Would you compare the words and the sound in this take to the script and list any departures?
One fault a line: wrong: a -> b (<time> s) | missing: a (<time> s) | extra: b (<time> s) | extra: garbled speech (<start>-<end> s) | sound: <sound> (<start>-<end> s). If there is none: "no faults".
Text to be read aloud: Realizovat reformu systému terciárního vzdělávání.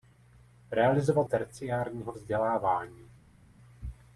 missing: reformu systému (1.3 s)